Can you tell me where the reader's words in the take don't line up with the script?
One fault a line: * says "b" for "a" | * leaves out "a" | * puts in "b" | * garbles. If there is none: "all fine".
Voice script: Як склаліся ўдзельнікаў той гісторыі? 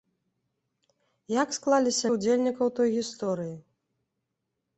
all fine